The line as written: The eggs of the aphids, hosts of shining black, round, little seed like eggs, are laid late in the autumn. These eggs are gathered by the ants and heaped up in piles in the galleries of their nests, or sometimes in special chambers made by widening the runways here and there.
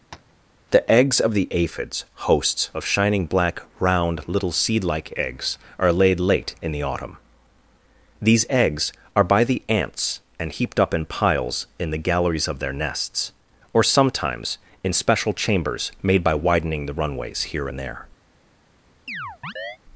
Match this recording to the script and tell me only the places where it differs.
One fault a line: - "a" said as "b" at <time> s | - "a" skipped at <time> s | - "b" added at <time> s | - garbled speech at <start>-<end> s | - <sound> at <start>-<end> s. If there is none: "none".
- tap at 0.1-0.4 s
- "gathered" skipped at 9.2 s
- chirp at 19.1-19.8 s